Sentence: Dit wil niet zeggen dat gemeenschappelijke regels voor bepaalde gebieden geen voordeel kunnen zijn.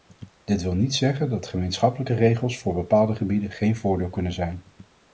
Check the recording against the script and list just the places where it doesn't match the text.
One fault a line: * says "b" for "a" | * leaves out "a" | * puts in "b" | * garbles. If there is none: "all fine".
all fine